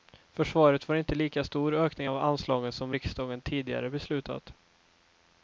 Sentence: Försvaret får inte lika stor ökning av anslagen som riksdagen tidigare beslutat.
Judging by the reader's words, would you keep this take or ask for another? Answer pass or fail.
pass